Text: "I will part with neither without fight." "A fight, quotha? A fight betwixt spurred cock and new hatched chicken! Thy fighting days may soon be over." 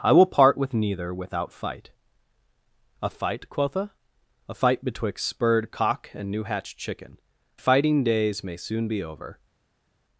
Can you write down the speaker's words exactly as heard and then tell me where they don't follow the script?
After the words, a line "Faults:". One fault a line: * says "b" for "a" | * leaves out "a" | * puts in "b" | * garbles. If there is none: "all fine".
"I will part with neither without fight." "A fight, quotha? A fight betwixt spurred cock and new hatched chicken! Fighting days may soon be over."
Faults:
* leaves out "Thy"